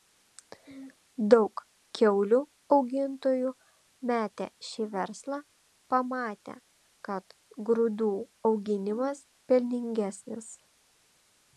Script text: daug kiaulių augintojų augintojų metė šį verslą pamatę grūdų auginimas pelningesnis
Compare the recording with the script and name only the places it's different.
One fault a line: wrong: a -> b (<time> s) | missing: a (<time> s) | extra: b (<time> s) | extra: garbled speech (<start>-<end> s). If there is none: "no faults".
missing: augintojų (3.5 s)
extra: kad (7.1 s)